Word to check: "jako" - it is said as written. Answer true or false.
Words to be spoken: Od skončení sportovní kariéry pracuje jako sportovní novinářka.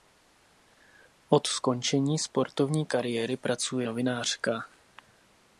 false